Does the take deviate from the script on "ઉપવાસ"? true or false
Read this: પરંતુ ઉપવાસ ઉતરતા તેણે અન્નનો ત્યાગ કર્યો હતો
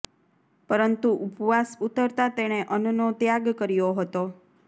false